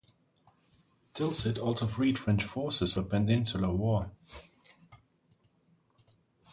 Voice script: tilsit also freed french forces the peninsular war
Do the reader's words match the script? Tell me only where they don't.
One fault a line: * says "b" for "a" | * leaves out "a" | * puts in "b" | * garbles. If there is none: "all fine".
all fine